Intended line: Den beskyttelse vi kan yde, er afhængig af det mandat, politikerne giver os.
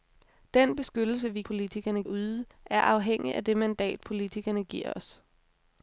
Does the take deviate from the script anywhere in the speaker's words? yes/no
yes